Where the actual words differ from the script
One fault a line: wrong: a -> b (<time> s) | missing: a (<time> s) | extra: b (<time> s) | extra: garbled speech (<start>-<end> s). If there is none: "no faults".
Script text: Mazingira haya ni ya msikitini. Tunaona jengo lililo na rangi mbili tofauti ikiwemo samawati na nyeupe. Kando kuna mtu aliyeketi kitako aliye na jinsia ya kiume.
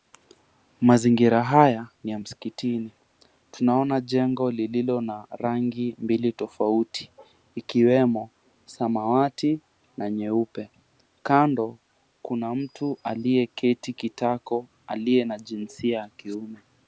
no faults